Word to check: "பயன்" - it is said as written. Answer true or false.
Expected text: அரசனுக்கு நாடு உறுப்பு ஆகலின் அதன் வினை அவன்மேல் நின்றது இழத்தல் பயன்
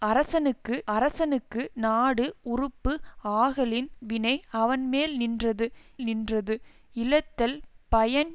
true